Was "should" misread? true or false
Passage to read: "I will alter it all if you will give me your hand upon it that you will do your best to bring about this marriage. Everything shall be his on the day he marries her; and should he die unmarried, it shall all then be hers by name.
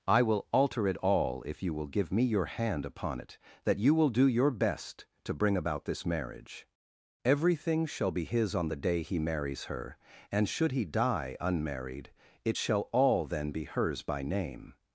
false